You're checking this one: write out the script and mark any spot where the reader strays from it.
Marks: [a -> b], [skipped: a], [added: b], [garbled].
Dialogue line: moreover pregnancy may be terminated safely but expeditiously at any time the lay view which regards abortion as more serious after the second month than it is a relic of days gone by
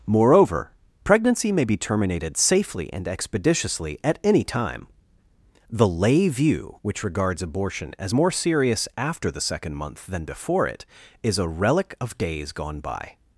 moreover pregnancy may be terminated safely [but -> and] expeditiously at any time the lay view which regards abortion as more serious after the second month than [added: before] it is a relic of days gone by